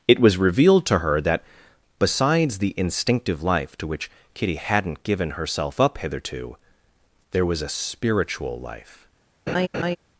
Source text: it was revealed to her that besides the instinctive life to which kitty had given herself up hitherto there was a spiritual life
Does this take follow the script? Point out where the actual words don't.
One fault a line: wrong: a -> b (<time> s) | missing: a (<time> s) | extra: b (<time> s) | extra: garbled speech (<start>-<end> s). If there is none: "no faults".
wrong: had -> hadn't (4.6 s)